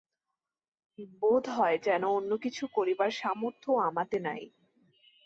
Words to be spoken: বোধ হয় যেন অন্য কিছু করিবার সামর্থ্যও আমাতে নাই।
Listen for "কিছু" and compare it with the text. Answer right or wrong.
right